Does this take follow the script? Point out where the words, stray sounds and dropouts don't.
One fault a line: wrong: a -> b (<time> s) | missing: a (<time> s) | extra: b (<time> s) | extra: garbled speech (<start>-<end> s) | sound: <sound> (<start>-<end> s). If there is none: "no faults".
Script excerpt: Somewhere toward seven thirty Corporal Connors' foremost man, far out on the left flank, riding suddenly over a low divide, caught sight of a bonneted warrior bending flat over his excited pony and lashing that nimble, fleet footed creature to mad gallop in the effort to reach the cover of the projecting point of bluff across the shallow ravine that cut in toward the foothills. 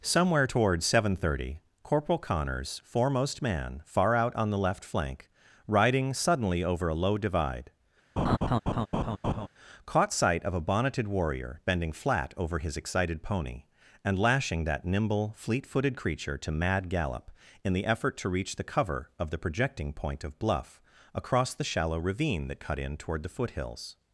sound: laugh (8.2-9.5 s)